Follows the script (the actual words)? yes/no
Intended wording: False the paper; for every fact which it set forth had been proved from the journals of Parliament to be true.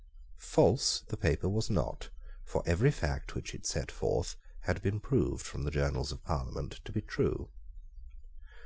no